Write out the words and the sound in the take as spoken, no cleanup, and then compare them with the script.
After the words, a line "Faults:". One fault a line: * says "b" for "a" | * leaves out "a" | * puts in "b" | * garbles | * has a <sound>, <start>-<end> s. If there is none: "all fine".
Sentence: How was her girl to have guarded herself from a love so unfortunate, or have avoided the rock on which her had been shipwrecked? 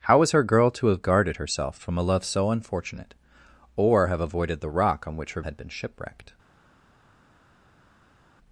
How was her girl to have guarded herself from a love so unfortunate, or have avoided the rock on which her had been shipwrecked?
Faults:
all fine